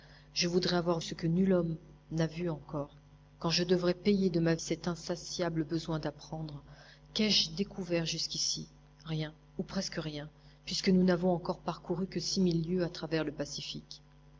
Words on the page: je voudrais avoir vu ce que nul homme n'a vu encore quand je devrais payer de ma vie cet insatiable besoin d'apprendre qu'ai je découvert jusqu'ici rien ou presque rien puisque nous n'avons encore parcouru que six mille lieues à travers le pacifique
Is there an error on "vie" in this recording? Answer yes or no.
yes